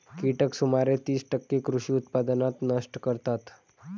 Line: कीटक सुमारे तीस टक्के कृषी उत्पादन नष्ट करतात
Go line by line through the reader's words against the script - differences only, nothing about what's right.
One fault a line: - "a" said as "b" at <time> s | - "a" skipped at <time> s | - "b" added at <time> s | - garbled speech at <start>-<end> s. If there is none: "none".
none